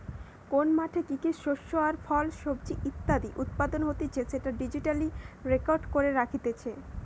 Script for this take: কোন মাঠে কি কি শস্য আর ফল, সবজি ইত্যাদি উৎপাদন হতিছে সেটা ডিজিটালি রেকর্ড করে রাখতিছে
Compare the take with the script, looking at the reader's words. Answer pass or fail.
pass